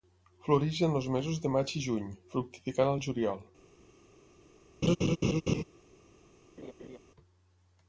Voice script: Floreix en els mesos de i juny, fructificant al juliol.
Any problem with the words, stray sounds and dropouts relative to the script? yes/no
yes